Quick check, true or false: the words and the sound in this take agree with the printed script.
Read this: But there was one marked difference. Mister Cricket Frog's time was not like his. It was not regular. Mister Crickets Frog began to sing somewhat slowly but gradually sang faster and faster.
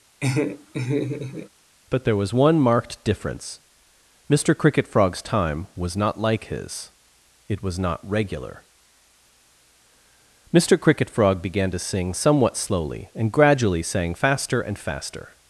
false